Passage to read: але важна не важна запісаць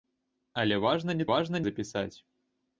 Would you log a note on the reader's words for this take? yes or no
no